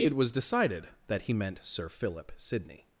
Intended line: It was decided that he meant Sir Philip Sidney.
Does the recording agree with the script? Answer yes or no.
yes